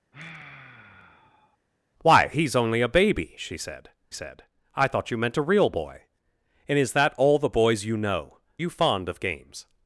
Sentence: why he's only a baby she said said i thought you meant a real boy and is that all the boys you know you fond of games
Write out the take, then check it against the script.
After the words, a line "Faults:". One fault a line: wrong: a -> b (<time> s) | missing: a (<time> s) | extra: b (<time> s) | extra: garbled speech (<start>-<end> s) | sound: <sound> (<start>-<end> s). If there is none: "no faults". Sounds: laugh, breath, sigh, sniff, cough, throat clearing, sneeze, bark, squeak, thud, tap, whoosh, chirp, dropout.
why he's only a baby she said said i thought you meant a real boy and is that all the boys you know you fond of games
Faults:
sound: sigh (0.1-1.6 s)